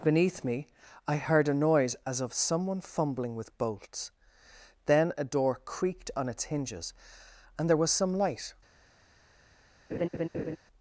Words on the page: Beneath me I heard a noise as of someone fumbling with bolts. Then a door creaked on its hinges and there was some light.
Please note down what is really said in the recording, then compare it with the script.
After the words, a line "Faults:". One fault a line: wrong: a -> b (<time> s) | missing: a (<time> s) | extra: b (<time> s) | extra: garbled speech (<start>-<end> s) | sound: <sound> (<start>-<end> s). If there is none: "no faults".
Beneath me I heard a noise as of someone fumbling with bolts. Then a door creaked on its hinges and there was some light.
Faults:
sound: laugh (9.9-10.6 s)